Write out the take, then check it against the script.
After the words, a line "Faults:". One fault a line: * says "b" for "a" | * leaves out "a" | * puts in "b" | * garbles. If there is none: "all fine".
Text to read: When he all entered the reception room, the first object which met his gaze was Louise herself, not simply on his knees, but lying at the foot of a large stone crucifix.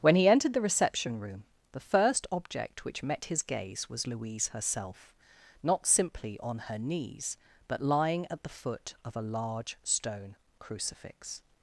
When he entered the reception room, the first object which met his gaze was Louise herself, not simply on her knees, but lying at the foot of a large stone crucifix.
Faults:
* leaves out "all"
* says "her" for "his"